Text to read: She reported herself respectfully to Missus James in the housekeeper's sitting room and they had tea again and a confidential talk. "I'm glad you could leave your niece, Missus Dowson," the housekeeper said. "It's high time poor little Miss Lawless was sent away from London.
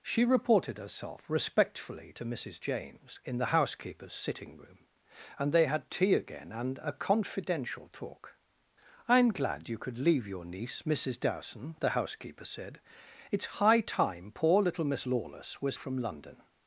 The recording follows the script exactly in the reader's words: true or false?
false